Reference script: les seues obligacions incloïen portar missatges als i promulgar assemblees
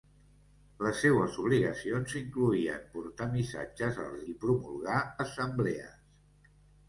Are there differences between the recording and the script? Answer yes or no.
no